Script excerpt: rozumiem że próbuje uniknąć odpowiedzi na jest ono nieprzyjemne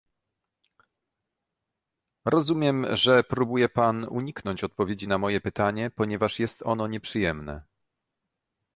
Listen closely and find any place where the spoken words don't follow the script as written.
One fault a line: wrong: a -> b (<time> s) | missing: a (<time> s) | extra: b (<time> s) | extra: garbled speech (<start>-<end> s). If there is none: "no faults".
extra: pan (3.7 s)
extra: moje pytanie ponieważ (5.2 s)